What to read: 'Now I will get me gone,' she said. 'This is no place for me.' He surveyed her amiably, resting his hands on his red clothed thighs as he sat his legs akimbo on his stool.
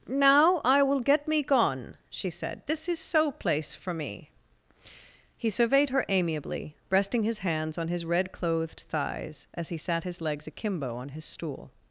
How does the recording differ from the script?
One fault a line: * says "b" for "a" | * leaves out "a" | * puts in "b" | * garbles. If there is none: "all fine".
* says "so" for "no"